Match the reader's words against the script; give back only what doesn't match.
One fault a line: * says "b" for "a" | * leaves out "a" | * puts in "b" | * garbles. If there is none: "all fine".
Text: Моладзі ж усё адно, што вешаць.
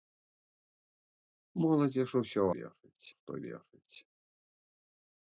* says "вешаць" for "адно"